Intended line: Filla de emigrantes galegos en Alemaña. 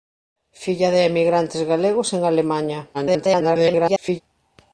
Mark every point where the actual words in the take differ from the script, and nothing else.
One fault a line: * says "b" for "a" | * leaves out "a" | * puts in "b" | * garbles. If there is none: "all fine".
* garbles